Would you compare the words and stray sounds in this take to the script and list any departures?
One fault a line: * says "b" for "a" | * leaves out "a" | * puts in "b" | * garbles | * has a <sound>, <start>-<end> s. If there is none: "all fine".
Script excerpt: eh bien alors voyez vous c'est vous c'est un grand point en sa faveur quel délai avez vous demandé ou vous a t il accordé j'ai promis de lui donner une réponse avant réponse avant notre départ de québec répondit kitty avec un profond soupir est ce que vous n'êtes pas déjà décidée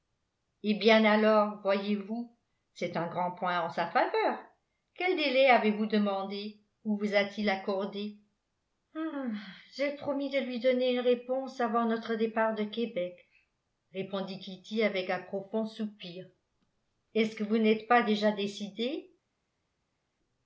* leaves out "vous c'est"
* leaves out "réponse avant"